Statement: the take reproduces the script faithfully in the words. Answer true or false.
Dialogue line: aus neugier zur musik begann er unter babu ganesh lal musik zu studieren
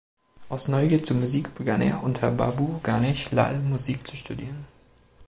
true